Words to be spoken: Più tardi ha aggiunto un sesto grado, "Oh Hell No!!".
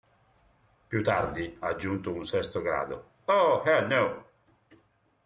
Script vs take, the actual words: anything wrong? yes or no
no